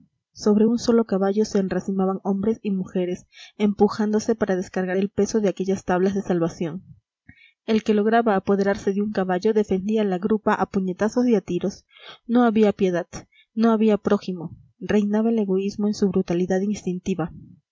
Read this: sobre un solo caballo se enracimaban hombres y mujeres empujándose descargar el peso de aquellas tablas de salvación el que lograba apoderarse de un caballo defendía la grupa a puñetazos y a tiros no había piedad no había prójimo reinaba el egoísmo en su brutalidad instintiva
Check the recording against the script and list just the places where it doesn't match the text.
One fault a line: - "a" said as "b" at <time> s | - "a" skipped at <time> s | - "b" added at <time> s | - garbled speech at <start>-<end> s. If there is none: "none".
- "para" added at 4.4 s